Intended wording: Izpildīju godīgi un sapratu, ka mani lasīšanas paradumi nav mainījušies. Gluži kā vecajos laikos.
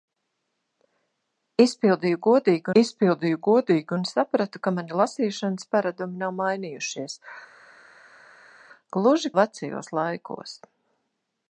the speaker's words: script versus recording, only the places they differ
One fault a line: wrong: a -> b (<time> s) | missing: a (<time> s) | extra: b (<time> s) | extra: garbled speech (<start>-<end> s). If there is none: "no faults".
extra: izpildīju godīgi (2.8 s)
missing: kā (9.3 s)